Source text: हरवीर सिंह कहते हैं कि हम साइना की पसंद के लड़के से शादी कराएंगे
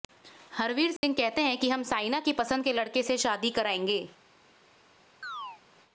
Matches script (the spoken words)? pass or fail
pass